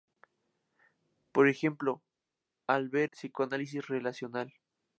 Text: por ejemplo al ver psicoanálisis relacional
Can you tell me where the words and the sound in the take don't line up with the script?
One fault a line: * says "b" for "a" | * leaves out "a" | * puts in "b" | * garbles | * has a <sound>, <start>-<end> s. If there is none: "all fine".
all fine